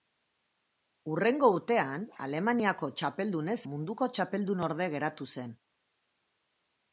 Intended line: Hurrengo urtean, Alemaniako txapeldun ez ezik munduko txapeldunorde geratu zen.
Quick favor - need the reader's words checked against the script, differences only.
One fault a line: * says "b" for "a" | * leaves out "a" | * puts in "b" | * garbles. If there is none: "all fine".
* leaves out "ezik"